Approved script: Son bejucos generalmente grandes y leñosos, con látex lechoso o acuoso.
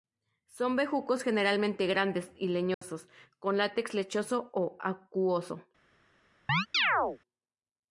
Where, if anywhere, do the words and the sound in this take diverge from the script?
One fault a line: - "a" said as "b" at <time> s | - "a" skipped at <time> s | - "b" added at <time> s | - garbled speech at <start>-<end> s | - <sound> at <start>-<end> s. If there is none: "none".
- dropout at 2.7-2.8 s
- chirp at 6.5-7.2 s